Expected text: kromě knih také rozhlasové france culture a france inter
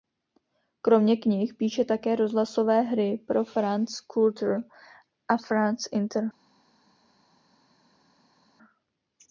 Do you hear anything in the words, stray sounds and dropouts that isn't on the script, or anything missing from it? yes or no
yes